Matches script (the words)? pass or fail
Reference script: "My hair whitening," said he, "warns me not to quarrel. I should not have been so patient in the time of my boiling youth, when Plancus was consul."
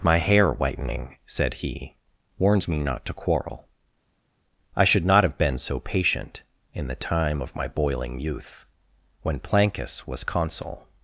pass